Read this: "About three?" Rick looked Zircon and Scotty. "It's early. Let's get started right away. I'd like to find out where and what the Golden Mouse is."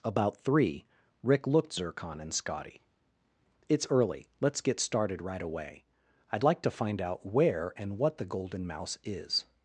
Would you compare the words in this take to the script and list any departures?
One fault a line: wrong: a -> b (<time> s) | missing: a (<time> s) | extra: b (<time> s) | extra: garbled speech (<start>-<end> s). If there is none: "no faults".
no faults